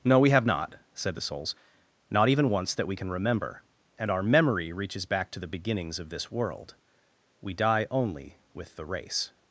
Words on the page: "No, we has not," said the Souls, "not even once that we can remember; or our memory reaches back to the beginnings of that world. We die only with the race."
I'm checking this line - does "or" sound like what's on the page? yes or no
no